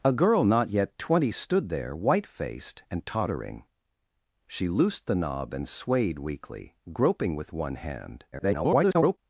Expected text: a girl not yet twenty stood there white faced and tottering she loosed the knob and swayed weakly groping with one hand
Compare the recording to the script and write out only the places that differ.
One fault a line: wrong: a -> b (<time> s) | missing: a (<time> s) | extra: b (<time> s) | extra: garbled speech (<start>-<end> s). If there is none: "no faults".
extra: garbled speech (8.3-9.2 s)